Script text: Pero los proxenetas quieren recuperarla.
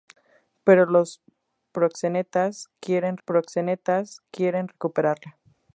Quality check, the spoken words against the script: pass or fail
fail